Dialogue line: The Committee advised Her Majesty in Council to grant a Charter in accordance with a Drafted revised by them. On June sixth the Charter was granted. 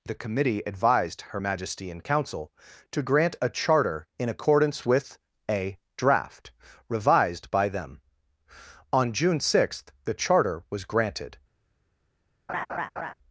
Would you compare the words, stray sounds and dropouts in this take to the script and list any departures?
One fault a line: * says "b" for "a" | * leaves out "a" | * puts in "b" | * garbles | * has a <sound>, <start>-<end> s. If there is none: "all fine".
* says "Draft" for "Drafted"
* has a laugh, 12.5-13.1 s